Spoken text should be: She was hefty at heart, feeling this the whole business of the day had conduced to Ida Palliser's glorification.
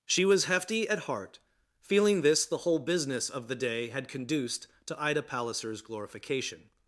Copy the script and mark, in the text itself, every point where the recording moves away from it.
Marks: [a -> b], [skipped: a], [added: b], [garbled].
She was hefty at heart, feeling this the whole business of the day had conduced to Ida Palliser's glorification.